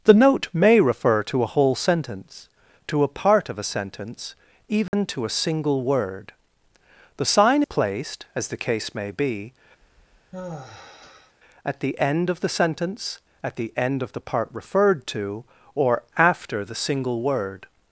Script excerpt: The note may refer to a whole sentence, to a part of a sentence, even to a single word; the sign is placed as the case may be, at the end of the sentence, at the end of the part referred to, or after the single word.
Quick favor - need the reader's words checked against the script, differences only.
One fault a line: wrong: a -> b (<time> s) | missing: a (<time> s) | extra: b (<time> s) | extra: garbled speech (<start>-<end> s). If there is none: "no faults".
missing: is (7.6 s)